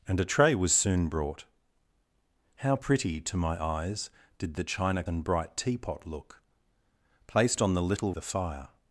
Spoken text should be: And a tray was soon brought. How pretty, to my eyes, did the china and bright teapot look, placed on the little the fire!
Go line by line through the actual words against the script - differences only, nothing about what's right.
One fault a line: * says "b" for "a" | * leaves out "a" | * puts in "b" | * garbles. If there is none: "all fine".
all fine